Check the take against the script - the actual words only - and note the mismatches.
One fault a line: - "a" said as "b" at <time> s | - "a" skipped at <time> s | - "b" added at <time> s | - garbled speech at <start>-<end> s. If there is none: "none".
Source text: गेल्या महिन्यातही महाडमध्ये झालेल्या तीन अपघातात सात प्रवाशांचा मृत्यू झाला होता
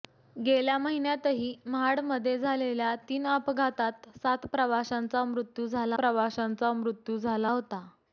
- "प्रवाशांचा मृत्यू झाला" added at 6.0 s